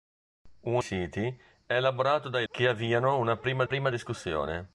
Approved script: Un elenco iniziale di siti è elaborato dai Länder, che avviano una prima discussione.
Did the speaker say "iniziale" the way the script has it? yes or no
no